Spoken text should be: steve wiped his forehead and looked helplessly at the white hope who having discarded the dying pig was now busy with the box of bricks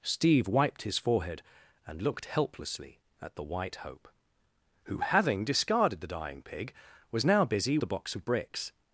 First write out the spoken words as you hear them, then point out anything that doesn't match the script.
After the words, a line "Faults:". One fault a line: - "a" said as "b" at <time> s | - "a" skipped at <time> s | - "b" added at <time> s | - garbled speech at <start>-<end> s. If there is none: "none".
steve wiped his forehead and looked helplessly at the white hope who having discarded the dying pig was now busy the box of bricks
Faults:
- "with" skipped at 7.8 s